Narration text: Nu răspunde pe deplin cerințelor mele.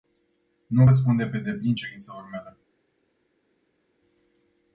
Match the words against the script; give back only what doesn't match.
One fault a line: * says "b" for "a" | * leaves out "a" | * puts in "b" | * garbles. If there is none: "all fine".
all fine